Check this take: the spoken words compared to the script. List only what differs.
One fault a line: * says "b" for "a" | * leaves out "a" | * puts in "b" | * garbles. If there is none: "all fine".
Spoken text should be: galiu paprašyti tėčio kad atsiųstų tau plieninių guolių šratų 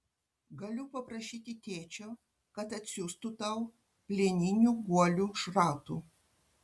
all fine